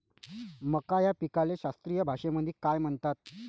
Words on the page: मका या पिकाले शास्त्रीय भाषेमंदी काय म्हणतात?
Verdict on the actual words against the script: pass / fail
pass